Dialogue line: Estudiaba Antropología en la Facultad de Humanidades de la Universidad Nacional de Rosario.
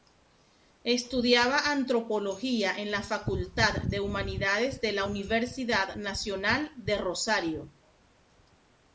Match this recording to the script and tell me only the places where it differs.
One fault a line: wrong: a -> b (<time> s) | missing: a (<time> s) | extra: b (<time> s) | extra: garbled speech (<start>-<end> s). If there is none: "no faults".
no faults